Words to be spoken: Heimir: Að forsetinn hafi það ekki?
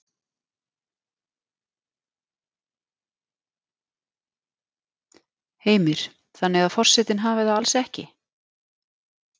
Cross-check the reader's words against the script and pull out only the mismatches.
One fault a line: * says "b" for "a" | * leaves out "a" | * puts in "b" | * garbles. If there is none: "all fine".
* puts in "Þannig"
* puts in "alls"